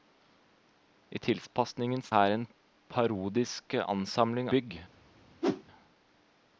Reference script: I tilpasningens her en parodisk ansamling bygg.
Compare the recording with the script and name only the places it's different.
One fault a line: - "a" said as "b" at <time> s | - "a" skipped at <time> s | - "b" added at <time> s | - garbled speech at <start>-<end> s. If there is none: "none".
none